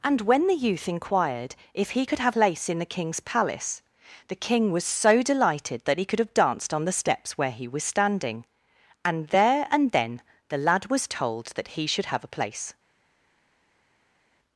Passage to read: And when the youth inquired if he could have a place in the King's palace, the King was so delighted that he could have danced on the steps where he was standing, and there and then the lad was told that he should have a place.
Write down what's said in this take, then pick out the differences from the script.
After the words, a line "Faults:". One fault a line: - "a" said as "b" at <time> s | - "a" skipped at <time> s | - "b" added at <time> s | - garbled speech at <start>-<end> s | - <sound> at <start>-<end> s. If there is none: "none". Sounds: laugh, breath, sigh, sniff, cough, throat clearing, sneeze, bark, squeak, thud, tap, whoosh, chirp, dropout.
And when the youth inquired if he could have place in the King's palace, the King was so delighted that he could have danced on the steps where he was standing, and there and then the lad was told that he should have a place.
Faults:
- "a" skipped at 2.4 s